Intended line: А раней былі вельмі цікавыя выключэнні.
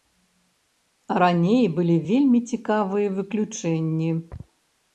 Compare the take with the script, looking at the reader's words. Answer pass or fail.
pass